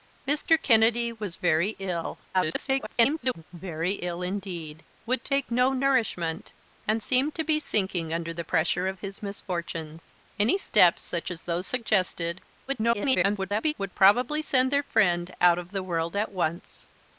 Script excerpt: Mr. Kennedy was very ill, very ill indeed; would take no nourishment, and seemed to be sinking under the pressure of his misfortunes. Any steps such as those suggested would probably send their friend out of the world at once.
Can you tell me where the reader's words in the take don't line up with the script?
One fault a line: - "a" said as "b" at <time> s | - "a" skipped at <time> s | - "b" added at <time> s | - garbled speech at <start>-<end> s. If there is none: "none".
- garbled speech at 2.3-3.4 s
- garbled speech at 12.7-13.7 s